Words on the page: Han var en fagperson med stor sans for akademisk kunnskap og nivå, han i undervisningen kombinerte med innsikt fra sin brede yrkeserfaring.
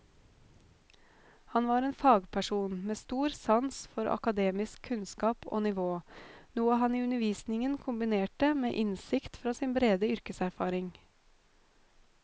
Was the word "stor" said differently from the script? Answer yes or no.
no